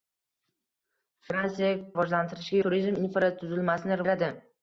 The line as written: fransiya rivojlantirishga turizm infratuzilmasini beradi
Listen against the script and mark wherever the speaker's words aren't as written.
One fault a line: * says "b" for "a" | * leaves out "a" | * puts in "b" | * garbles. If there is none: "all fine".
all fine